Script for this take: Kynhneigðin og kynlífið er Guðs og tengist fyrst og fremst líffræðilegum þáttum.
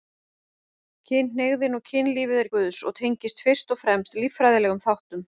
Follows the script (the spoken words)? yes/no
yes